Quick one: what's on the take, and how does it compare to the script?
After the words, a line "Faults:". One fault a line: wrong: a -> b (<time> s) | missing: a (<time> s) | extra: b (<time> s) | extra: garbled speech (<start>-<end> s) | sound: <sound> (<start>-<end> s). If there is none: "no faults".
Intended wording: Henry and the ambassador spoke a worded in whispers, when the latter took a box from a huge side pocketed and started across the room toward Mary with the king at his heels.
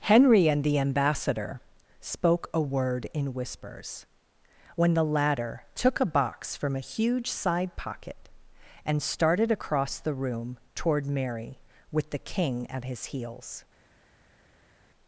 Henry and the ambassador spoke a word in whispers, when the latter took a box from a huge side pocket and started across the room toward Mary with the king at his heels.
Faults:
wrong: worded -> word (2.6 s)
wrong: pocketed -> pocket (7.7 s)